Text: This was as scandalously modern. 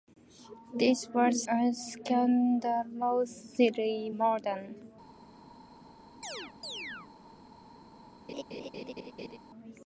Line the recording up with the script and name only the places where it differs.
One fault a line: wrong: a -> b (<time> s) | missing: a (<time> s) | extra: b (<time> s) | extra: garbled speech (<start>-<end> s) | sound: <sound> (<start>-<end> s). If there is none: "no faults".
sound: chirp (6.2-7.1 s)
sound: laugh (8.3-9.4 s)